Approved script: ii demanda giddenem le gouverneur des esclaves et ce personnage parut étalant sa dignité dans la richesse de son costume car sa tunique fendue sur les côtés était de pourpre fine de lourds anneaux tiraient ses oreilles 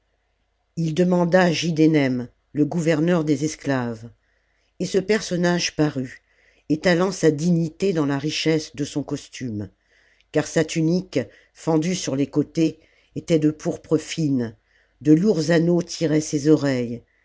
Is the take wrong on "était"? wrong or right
right